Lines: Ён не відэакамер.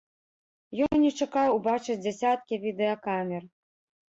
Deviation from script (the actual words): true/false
true